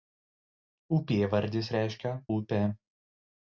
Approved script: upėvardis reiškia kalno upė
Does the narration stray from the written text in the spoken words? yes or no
yes